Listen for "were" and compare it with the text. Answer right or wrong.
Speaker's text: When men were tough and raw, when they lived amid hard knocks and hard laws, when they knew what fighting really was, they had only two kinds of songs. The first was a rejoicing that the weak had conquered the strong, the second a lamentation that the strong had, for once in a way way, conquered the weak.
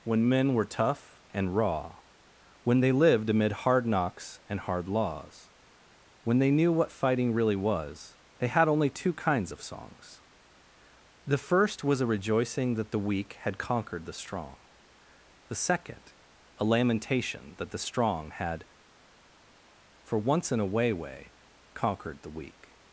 right